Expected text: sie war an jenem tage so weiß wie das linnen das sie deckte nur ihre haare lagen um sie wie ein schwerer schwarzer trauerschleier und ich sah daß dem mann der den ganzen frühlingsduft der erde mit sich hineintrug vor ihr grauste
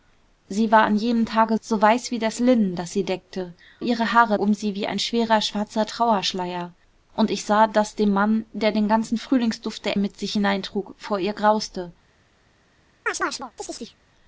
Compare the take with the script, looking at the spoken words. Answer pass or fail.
fail